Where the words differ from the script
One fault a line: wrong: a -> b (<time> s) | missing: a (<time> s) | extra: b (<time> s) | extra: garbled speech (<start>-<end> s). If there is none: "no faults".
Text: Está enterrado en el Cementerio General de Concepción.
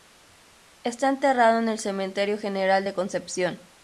no faults